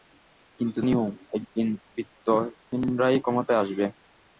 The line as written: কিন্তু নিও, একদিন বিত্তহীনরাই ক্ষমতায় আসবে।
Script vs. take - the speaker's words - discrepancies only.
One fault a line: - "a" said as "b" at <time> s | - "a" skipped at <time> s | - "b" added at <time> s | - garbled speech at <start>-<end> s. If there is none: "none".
none